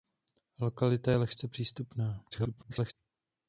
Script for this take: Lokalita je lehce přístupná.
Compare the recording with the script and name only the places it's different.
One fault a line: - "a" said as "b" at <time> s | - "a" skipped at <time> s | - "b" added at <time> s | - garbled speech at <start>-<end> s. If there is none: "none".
- garbled speech at 2.3-2.9 s